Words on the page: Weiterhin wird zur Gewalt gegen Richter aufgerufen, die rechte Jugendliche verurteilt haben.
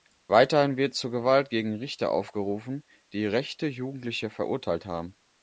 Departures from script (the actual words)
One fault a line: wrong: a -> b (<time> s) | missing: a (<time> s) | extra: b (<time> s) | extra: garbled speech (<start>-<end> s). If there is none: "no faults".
no faults